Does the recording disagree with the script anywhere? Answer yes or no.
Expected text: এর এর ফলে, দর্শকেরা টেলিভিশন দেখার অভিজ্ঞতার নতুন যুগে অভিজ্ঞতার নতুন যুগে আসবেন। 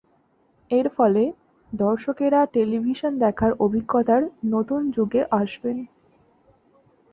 yes